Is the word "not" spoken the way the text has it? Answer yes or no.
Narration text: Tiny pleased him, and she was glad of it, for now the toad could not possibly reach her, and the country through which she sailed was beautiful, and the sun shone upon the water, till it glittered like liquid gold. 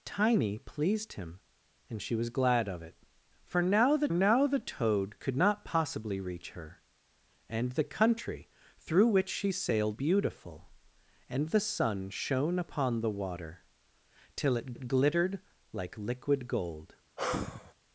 yes